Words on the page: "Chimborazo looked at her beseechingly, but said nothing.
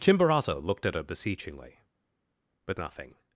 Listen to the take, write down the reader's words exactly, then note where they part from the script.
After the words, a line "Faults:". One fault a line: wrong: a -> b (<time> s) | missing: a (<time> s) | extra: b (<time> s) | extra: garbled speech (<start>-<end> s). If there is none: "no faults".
"Chimborazo looked at her beseechingly, but nothing.
Faults:
missing: said (2.8 s)